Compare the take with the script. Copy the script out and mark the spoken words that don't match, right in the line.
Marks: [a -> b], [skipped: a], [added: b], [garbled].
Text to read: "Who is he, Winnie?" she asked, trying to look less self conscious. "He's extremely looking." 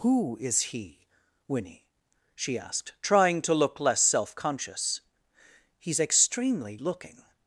"Who is he, Winnie?" she asked, trying to look less self conscious. "He's extremely looking."